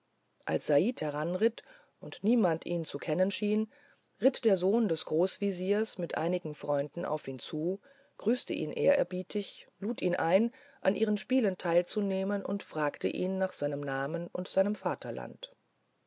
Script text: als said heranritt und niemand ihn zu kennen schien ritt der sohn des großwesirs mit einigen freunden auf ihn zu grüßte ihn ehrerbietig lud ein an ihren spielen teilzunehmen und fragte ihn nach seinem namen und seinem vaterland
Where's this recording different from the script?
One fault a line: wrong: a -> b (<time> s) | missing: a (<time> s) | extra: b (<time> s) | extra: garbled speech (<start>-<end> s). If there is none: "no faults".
extra: ihn (10.0 s)